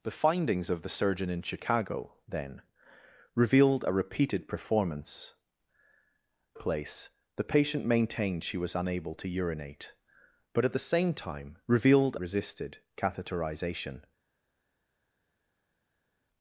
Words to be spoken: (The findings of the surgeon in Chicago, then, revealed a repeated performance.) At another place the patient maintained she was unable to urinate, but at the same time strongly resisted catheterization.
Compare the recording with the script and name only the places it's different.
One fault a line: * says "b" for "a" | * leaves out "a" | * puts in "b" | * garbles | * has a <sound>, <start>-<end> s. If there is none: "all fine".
* leaves out "At another"
* says "revealed" for "strongly"